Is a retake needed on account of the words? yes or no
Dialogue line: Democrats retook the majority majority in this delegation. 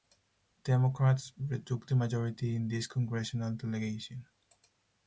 yes